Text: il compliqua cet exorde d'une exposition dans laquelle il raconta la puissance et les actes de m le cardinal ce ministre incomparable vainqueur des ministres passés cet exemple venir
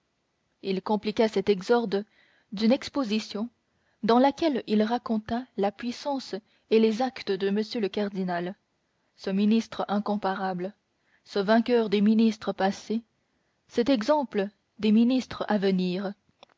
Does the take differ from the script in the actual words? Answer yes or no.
yes